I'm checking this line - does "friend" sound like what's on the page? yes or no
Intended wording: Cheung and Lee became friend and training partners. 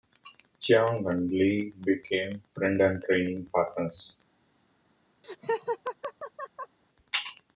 yes